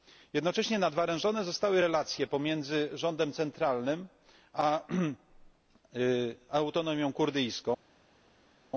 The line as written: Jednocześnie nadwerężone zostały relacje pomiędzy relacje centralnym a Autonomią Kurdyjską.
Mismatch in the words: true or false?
true